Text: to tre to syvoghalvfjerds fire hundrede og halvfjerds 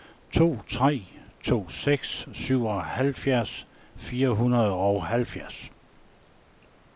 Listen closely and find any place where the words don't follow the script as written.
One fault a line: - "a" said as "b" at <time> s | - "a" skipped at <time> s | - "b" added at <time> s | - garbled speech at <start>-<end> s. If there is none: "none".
- "seks" added at 1.7 s